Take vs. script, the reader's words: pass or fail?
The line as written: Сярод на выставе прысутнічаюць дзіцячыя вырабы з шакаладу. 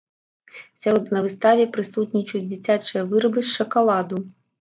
pass